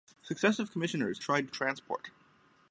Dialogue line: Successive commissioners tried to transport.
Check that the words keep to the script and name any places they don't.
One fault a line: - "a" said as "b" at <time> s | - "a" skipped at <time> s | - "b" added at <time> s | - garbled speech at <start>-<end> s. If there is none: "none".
none